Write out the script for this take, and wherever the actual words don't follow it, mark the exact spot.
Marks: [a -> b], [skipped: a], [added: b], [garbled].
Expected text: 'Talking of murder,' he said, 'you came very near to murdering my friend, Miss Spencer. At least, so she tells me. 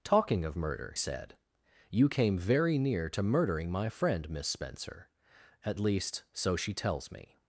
'Talking of murder,' [skipped: he] said, 'you came very near to murdering my friend, Miss Spencer. At least, so she tells me.